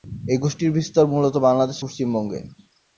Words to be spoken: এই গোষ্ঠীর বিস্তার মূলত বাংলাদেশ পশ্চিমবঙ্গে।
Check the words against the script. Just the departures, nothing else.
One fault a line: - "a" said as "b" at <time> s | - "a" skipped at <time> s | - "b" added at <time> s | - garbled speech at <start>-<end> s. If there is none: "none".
none